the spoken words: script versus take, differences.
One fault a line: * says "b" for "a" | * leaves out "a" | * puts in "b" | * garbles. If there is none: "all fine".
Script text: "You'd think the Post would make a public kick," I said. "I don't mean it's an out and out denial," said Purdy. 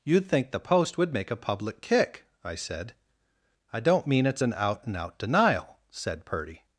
all fine